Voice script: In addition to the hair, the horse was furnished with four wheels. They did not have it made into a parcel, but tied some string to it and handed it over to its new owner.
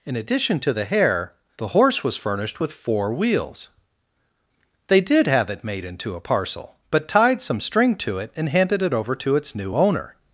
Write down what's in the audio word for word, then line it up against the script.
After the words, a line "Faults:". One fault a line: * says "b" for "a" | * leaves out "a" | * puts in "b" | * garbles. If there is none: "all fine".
In addition to the hair, the horse was furnished with four wheels. They did have it made into a parcel, but tied some string to it and handed it over to its new owner.
Faults:
* leaves out "not"